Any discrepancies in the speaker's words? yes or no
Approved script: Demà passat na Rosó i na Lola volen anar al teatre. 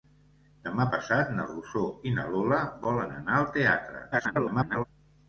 yes